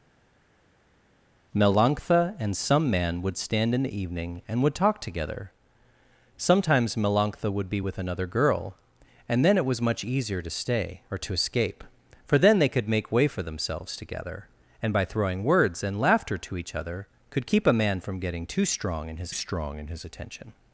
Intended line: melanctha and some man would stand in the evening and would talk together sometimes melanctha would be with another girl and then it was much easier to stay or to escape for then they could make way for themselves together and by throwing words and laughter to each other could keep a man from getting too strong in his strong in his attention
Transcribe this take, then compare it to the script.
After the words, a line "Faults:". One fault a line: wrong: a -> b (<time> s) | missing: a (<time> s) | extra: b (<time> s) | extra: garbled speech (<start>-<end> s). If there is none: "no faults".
melanctha and some man would stand in the evening and would talk together sometimes melanctha would be with another girl and then it was much easier to stay or to escape for then they could make way for themselves together and by throwing words and laughter to each other could keep a man from getting too strong in his strong in his attention
Faults:
no faults